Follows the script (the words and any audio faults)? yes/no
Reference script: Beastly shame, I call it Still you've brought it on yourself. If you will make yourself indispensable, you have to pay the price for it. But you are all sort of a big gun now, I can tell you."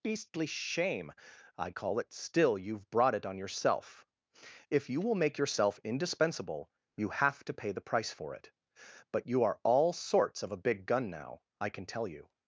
no